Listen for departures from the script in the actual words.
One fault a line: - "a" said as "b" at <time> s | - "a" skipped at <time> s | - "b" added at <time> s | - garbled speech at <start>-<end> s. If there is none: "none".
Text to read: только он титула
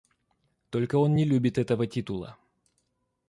- "не любит этого" added at 1.1 s